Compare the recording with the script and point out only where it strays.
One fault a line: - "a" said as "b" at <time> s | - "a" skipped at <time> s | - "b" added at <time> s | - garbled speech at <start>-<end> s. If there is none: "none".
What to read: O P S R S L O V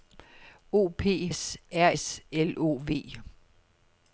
none